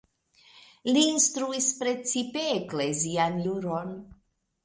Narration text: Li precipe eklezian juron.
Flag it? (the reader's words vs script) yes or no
yes